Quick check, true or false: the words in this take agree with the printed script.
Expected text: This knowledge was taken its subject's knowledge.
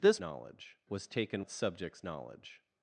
true